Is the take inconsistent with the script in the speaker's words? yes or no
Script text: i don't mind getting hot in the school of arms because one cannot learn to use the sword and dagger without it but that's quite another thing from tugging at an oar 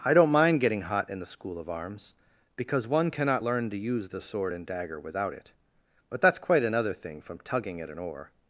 no